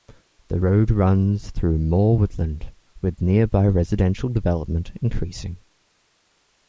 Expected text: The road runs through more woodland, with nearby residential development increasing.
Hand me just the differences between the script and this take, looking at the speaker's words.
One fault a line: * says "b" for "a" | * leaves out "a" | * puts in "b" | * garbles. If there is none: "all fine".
all fine